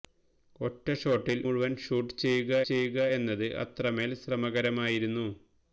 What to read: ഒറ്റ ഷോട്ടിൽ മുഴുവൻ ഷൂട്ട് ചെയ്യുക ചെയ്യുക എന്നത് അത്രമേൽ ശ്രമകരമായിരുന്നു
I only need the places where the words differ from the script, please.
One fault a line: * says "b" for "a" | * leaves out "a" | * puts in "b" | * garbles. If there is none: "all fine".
all fine